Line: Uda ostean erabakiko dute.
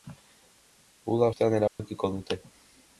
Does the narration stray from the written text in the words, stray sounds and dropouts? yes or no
yes